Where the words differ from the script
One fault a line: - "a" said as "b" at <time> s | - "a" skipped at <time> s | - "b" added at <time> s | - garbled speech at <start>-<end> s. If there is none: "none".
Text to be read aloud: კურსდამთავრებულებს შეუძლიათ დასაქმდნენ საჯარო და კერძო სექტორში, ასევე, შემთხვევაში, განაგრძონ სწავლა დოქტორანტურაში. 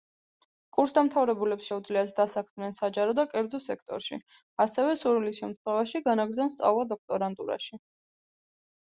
- "სურვილის" added at 5.0 s